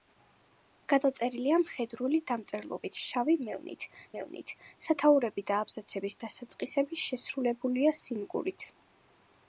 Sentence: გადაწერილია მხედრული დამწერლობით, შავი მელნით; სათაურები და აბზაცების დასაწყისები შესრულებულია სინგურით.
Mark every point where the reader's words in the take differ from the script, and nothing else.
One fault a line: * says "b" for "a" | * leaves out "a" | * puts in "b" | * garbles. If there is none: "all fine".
* puts in "მელნით"